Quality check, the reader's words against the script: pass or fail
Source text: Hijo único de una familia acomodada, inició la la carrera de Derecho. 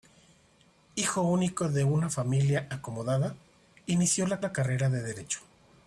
pass